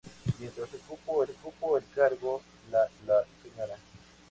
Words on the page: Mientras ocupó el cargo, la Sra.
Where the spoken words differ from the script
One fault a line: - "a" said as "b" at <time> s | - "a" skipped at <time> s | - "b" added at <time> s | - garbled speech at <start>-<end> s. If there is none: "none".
- "ocupó" added at 1.3 s
- "la" added at 3.1 s